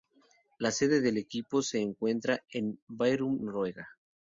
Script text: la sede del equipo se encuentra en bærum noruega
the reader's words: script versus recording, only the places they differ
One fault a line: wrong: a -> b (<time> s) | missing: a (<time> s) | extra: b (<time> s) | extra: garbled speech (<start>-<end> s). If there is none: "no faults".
no faults